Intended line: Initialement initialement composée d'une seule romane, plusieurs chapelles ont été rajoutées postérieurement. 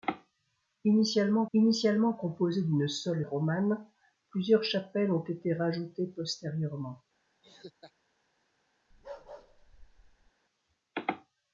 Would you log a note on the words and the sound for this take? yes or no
yes